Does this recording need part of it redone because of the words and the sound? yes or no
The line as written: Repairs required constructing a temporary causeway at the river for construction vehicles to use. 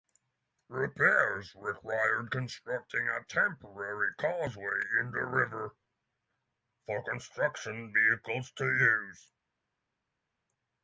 yes